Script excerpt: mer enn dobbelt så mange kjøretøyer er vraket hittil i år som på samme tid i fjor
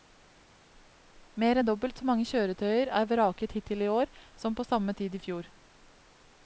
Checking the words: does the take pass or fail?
pass